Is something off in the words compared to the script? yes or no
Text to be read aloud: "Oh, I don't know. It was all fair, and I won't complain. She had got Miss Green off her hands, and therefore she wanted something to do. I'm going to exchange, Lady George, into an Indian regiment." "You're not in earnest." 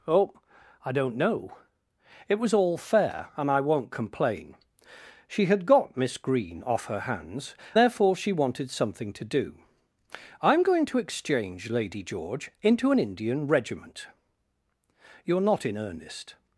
yes